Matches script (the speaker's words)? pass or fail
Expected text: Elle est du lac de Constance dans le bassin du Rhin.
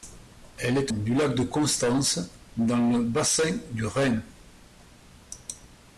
pass